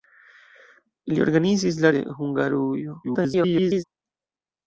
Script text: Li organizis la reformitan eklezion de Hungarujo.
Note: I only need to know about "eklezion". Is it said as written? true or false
false